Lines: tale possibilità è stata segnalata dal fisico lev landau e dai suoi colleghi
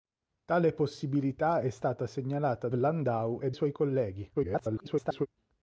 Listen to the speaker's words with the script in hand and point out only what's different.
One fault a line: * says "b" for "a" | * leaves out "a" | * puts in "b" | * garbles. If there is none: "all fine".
* leaves out "dal fisico lev"
* leaves out "dai"
* garbles